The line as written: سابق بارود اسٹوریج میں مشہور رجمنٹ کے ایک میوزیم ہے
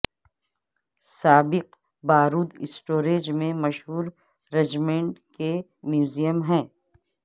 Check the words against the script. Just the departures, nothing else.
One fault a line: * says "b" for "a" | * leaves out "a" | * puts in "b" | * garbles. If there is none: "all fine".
* leaves out "ایک"